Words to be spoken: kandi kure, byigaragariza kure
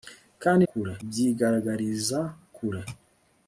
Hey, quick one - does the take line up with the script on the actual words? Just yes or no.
yes